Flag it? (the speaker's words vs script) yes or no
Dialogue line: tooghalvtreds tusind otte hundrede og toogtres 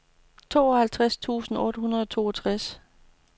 no